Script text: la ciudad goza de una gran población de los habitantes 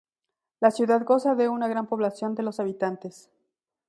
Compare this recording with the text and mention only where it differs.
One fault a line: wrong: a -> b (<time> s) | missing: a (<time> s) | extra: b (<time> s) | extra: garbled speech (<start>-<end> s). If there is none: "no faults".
no faults